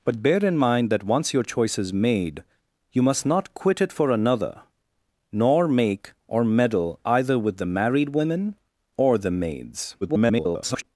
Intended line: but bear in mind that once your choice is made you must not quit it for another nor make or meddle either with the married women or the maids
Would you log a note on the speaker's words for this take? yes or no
yes